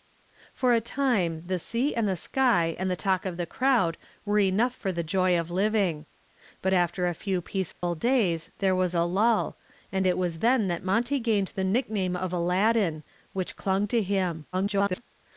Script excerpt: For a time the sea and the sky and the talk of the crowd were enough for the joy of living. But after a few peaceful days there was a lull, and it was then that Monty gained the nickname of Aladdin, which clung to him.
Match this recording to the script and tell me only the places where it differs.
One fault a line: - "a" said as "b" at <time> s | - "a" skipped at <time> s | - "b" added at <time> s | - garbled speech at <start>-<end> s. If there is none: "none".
- garbled speech at 14.5-15.0 s